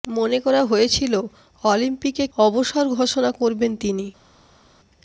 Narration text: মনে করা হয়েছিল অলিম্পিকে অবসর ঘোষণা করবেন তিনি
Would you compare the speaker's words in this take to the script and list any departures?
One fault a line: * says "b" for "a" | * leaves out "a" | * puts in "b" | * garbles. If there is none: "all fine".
all fine